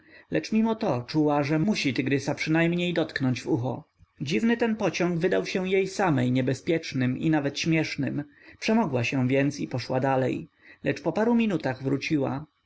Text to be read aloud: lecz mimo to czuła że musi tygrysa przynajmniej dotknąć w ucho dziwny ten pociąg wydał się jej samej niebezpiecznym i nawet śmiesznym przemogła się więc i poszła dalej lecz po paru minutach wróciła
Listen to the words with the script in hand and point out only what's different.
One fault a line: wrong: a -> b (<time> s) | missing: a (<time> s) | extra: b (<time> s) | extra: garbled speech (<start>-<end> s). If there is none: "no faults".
no faults